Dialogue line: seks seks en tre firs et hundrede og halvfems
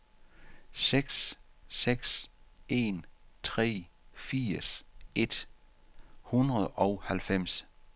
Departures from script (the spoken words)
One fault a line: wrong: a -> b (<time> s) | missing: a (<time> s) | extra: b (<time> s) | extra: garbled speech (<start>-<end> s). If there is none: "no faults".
no faults